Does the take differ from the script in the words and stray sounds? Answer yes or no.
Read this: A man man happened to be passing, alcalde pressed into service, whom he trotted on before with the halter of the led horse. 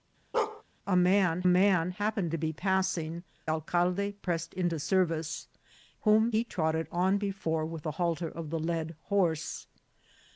yes